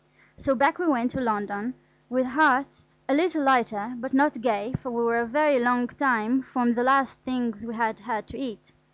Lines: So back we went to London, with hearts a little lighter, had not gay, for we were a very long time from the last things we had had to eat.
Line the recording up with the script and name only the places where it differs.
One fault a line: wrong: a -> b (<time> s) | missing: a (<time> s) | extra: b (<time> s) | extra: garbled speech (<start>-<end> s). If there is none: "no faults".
wrong: had -> but (4.0 s)